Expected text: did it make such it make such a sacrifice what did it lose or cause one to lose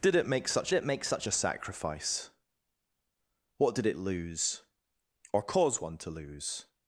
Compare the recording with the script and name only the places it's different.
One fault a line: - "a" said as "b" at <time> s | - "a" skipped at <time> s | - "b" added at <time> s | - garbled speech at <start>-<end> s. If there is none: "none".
none